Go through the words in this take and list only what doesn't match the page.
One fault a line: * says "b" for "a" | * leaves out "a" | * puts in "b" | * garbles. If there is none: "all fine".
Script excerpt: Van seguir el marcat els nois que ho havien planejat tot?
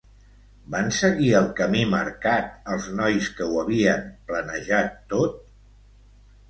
* puts in "camí"